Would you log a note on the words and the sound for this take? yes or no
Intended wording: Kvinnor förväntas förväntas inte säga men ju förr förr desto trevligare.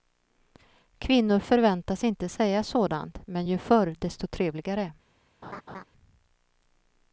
yes